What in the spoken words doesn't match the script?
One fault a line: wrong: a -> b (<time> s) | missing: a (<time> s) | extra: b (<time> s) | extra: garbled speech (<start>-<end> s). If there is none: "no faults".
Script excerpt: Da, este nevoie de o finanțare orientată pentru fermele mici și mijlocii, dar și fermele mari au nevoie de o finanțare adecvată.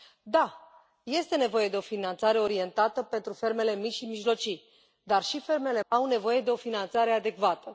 missing: mari (5.8 s)